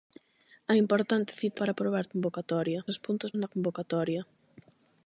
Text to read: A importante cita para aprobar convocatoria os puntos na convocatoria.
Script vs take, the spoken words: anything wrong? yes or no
no